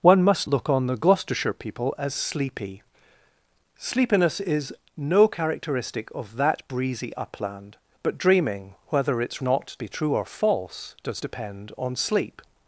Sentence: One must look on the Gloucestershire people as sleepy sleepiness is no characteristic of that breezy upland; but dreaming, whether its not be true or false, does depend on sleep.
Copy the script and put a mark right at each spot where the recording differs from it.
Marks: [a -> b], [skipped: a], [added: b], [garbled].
One must look on the Gloucestershire people as sleepy sleepiness is no characteristic of that breezy upland; but dreaming, whether its not be true or false, does depend on sleep.